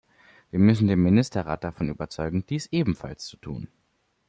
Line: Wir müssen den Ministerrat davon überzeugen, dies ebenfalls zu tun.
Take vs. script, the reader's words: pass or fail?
pass